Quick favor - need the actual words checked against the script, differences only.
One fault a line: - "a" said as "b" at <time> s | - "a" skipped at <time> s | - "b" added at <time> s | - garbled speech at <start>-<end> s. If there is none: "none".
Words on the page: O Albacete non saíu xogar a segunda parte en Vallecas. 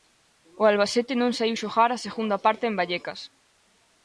none